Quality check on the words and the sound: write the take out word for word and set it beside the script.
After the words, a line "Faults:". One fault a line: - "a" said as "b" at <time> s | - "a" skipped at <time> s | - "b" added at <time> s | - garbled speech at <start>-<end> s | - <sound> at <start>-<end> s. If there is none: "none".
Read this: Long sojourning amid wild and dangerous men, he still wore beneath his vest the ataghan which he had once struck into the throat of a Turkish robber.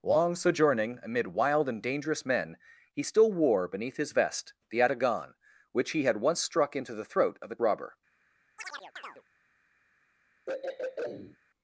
Long sojourning amid wild and dangerous men, he still wore beneath his vest the ataghan which he had once struck into the throat of a Robber.
Faults:
- "Turkish" skipped at 7.6 s
- chirp at 8.6-9.2 s
- throat clearing at 10.5-11.4 s